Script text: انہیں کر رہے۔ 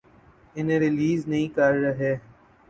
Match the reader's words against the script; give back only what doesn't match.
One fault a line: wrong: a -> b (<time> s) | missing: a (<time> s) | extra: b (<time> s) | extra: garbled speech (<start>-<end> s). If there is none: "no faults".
extra: ریلیز نہیں (0.8 s)